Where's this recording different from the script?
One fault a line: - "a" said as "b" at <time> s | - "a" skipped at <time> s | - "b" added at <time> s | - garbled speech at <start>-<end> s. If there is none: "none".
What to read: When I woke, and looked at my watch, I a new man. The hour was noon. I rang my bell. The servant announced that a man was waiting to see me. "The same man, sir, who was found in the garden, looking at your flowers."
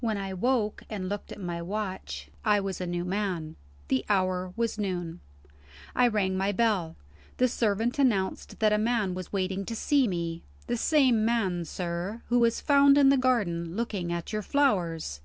- "was" added at 2.6 s